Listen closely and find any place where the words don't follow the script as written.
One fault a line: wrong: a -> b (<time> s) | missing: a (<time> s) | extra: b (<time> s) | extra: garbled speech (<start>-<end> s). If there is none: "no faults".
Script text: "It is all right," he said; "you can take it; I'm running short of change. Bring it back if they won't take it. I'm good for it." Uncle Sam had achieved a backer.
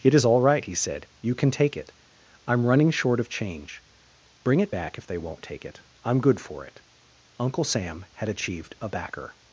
no faults